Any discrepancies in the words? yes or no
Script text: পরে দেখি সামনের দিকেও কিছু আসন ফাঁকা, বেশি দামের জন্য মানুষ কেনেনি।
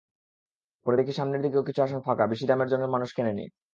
no